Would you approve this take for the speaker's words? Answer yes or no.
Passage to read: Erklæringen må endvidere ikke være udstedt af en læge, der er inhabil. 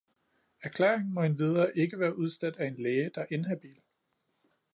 yes